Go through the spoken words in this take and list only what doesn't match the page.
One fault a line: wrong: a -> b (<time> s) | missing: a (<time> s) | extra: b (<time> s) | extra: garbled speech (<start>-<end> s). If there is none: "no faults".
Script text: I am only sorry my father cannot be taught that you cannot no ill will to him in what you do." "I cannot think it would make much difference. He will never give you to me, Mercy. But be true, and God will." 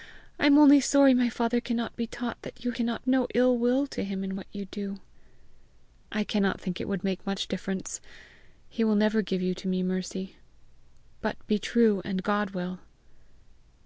no faults